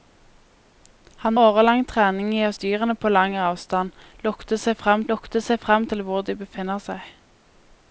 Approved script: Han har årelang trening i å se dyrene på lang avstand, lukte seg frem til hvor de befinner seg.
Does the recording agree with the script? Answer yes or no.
no